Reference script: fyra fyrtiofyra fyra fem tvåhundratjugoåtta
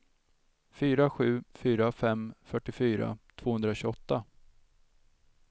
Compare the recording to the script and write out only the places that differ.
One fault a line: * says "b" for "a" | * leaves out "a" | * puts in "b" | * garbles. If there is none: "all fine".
* says "sju" for "fyrtiofyra"
* puts in "fyrtiofyra"